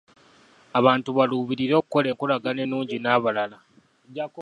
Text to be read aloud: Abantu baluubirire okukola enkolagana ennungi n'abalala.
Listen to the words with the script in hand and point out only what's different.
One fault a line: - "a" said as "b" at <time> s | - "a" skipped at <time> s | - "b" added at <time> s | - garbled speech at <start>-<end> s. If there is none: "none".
none